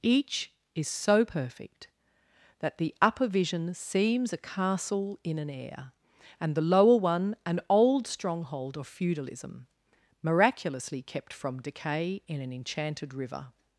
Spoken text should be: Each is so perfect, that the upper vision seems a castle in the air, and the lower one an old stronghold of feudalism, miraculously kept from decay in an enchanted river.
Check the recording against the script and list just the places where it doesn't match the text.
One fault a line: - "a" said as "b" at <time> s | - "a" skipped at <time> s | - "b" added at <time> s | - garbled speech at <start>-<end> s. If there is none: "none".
- "the" said as "an" at 5.4 s